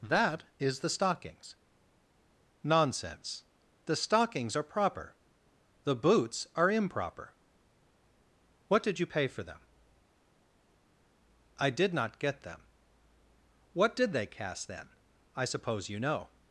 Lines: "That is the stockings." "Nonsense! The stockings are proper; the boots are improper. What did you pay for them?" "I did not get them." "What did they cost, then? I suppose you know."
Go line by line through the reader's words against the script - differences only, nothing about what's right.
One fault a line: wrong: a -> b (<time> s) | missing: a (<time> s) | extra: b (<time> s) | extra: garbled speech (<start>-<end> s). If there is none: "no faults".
wrong: cost -> cast (14.3 s)